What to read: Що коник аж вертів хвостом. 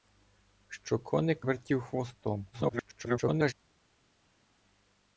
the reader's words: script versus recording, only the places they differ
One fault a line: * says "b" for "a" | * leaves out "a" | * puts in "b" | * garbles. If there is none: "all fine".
* leaves out "аж"
* garbles